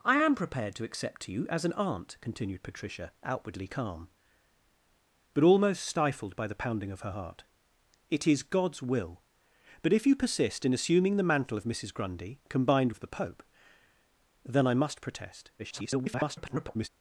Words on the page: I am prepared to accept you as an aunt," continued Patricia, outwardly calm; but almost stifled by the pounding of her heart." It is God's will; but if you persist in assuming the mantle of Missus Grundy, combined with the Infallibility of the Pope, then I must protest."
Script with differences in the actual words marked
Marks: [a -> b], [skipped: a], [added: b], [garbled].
I am prepared to accept you as an aunt," continued Patricia, outwardly calm; but almost stifled by the pounding of her heart." It is God's will; but if you persist in assuming the mantle of Missus Grundy, combined [skipped: with the Infallibility] of the Pope, then I must protest." [garbled]